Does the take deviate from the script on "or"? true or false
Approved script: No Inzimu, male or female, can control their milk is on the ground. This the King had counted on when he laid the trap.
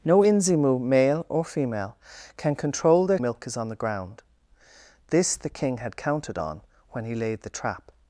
false